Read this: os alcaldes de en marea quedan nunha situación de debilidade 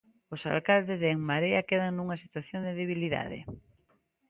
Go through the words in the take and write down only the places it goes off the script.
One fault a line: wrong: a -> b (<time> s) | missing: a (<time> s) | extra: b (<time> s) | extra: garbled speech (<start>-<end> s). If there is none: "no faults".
no faults